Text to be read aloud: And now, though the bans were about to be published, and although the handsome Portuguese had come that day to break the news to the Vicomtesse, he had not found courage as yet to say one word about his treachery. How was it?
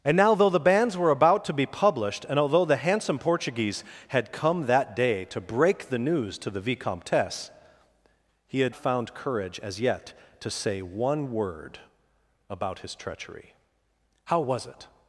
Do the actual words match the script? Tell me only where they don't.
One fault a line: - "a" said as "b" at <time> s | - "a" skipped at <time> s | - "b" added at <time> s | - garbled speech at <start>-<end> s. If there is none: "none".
- "not" skipped at 8.8 s